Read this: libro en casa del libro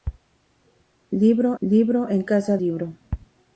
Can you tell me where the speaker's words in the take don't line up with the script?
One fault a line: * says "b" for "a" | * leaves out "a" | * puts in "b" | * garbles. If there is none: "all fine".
* puts in "libro"
* leaves out "del"